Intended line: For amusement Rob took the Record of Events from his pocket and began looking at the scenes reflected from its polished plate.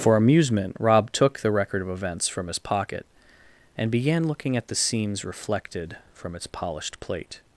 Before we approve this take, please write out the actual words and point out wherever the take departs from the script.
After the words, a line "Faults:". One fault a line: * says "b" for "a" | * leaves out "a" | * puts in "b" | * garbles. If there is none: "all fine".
For amusement Rob took the Record of Events from his pocket and began looking at the scenes reflected from its polished plate.
Faults:
all fine